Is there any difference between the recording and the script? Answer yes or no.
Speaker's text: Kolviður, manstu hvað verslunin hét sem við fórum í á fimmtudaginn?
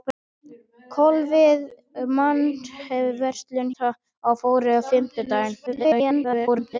yes